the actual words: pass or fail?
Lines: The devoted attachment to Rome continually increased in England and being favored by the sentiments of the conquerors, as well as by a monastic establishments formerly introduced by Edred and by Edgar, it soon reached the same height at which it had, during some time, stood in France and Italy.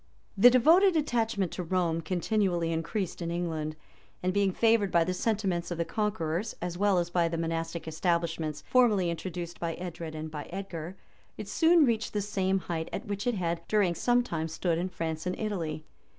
fail